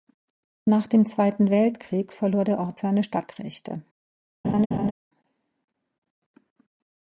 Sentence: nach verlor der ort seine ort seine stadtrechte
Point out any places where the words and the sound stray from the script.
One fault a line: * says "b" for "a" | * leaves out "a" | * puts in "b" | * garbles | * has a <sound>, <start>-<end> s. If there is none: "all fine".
* puts in "dem zweiten weltkrieg"
* leaves out "ort seine"
* has a laugh, 4.4-4.9 s